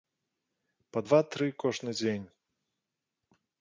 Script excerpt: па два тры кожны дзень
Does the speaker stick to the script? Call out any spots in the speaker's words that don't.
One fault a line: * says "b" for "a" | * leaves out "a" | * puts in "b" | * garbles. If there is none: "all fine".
all fine